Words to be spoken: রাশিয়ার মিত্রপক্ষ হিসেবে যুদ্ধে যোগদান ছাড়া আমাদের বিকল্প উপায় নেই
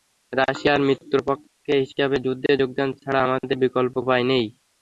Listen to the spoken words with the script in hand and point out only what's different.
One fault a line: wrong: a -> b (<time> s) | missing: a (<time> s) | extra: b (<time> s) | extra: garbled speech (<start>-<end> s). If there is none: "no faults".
no faults